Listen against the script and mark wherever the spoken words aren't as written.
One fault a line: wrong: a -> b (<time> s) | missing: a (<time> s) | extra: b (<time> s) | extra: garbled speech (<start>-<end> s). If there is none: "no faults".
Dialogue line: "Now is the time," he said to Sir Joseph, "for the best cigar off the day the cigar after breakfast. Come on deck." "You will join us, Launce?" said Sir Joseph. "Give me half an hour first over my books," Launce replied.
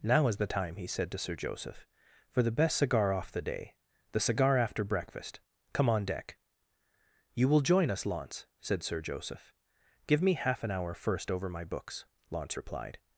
no faults